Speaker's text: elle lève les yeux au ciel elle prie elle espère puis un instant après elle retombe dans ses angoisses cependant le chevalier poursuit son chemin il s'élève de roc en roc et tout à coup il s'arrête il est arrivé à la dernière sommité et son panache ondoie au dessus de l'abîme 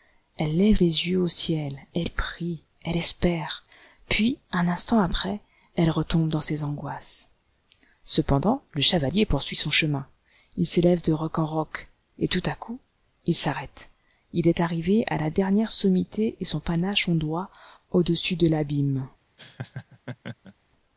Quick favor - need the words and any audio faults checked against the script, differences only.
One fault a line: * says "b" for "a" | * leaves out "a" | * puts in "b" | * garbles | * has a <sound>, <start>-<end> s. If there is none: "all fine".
* has a laugh, 19.4-20.5 s